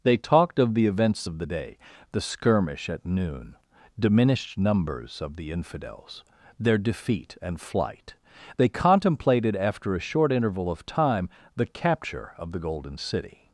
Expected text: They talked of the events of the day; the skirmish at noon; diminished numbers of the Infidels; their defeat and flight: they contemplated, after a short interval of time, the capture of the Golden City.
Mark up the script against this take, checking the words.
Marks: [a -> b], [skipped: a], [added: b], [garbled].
They talked of the events of the day; the skirmish at noon; diminished numbers of the Infidels; their defeat and flight: they contemplated, after a short interval of time, the capture of the Golden City.